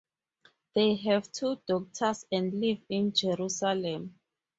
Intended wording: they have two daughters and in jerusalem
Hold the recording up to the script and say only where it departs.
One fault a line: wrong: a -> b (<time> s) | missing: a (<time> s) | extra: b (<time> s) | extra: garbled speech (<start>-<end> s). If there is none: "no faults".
extra: live (2.6 s)